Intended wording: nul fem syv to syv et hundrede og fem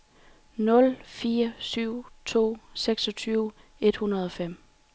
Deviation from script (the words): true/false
true